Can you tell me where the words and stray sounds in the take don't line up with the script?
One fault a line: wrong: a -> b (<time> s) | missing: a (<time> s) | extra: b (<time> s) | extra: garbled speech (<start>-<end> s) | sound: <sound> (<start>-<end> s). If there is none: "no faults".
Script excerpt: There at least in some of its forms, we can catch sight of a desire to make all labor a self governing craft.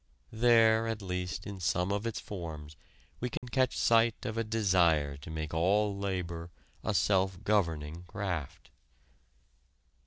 sound: dropout (3.4-3.4 s)